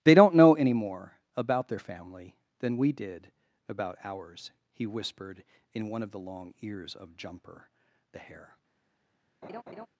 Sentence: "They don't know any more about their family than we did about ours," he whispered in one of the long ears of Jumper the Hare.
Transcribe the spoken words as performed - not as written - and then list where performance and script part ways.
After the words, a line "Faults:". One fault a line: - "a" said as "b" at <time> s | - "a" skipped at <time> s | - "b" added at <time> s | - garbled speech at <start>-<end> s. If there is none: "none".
"They don't know any more about their family than we did about ours," he whispered in one of the long ears of Jumper the Hare.
Faults:
none